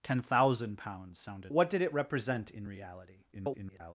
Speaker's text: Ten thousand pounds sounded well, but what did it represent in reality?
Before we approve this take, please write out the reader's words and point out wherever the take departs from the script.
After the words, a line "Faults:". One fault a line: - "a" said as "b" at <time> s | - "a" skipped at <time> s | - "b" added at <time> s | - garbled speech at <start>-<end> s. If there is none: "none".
Ten thousand pounds sounded what did it represent in reality? [garbled]
Faults:
- "well but" skipped at 1.5 s
- garbled speech at 3.3-3.9 s